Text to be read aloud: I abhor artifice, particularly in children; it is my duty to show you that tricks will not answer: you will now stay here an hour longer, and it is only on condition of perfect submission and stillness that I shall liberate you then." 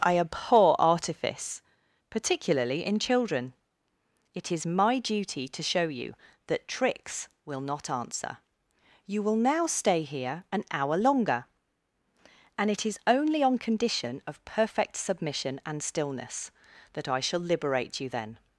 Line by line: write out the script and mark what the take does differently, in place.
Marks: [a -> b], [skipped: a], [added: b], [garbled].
I abhor artifice, particularly in children; it is my duty to show you that tricks will not answer: you will now stay here an hour longer, and it is only on condition of perfect submission and stillness that I shall liberate you then."